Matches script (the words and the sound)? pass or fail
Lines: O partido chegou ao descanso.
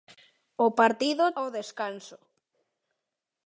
fail